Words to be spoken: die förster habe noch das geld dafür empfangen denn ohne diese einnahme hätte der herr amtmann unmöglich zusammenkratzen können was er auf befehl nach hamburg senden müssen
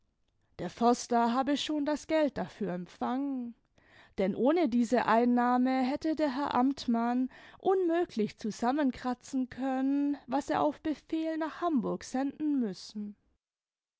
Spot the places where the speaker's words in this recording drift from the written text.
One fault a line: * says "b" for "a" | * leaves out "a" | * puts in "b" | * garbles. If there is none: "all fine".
* says "der" for "die"
* says "schon" for "noch"